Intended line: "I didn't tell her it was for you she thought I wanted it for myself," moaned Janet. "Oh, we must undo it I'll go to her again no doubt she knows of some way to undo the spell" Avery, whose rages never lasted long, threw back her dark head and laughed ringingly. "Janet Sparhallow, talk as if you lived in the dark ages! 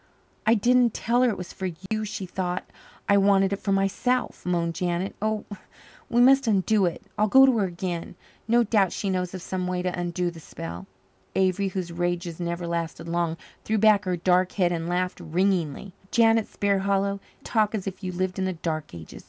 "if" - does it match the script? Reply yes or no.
yes